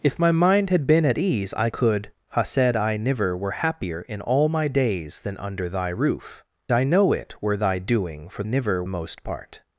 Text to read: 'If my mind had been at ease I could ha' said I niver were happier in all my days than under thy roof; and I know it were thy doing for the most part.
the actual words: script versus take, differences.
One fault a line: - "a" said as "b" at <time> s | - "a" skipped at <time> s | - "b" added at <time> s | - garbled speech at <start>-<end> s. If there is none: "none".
- "and" skipped at 6.4 s
- "the" said as "niver" at 8.4 s